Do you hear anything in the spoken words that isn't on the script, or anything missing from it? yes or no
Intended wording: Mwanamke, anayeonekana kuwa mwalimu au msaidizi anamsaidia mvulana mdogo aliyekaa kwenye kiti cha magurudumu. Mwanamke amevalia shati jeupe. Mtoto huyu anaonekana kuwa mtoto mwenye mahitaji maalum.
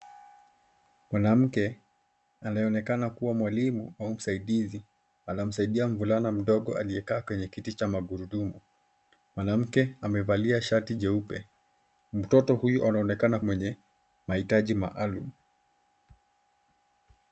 yes